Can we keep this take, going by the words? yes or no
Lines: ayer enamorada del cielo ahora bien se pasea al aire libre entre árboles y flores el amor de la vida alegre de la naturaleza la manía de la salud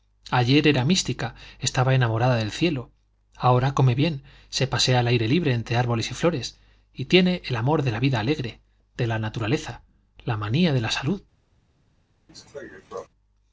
no